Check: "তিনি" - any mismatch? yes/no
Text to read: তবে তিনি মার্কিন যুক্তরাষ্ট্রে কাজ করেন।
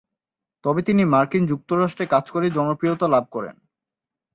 no